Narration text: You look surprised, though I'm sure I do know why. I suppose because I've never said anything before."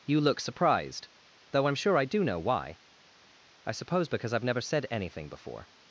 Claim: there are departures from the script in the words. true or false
false